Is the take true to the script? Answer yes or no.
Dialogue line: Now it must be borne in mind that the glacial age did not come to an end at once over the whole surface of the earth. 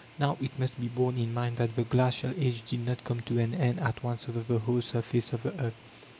yes